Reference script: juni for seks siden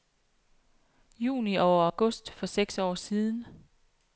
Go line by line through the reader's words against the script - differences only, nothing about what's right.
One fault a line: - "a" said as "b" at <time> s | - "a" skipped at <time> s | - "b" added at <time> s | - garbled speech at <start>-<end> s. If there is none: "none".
- "og august" added at 1.6 s
- "år" added at 2.8 s